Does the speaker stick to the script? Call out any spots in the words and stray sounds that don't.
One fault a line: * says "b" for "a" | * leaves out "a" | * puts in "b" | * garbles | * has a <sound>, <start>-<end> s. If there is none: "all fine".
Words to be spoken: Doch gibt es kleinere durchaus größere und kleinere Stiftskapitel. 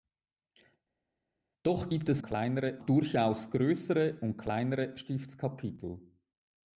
all fine